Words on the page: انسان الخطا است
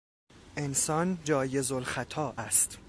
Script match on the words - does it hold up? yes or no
no